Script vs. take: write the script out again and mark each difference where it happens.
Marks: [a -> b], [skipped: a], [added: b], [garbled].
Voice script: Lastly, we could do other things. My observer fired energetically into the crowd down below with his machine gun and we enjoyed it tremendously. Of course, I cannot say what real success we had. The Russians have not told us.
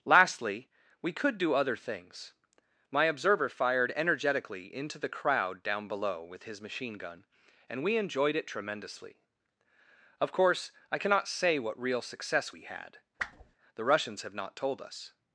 Lastly, we could do other things. My observer fired energetically into the crowd down below with his machine gun and we enjoyed it tremendously. Of course, I cannot say what real success we had. The Russians have not told us.